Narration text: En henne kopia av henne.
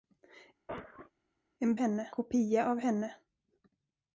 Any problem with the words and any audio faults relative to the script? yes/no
yes